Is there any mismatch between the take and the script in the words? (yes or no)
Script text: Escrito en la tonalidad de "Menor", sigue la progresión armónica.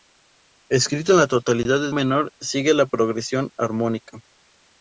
no